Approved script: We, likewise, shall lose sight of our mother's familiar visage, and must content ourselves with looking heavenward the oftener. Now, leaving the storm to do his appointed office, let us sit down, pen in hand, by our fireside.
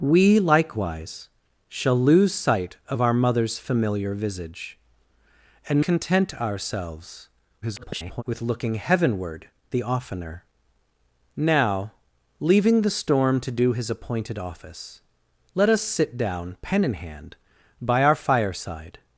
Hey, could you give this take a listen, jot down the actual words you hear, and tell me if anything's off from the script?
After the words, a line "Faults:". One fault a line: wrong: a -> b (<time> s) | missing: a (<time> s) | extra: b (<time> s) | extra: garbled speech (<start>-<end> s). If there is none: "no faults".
We, likewise, shall lose sight of our mother's familiar visage, and content ourselves [garbled] with looking heavenward the oftener. Now, leaving the storm to do his appointed office, let us sit down, pen in hand, by our fireside.
Faults:
missing: must (5.8 s)
extra: garbled speech (7.6-8.2 s)